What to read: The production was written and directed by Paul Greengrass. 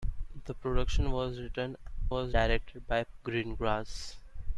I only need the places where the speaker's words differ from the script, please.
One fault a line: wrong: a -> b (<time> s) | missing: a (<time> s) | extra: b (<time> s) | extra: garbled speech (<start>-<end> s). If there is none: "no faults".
wrong: and -> was (2.1 s)
missing: Paul (3.0 s)